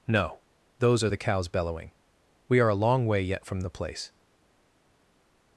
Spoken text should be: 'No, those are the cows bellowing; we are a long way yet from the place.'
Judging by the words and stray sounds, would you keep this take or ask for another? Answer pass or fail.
pass